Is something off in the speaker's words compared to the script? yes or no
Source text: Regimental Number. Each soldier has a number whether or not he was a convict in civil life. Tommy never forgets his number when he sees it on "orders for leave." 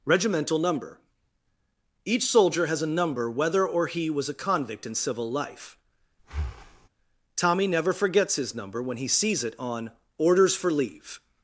yes